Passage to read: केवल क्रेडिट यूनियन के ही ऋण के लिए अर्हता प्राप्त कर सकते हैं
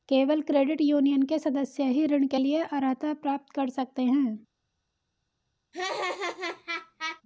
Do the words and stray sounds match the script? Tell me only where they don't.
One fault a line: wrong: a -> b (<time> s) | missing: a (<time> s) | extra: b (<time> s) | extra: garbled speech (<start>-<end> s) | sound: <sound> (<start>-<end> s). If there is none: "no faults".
extra: सदस्य (1.4 s)
sound: laugh (5.7-7.2 s)